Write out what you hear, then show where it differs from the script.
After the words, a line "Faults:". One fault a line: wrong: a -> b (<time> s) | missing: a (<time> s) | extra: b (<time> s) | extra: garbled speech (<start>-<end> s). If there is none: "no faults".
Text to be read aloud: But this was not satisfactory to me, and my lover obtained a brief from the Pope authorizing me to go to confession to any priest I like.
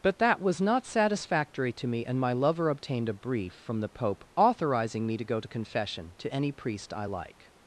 But that was not satisfactory to me, and my lover obtained a brief from the Pope authorizing me to go to confession to any priest I like.
Faults:
wrong: this -> that (0.2 s)